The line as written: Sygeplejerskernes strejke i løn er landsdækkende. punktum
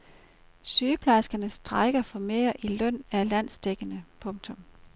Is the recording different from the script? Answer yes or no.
yes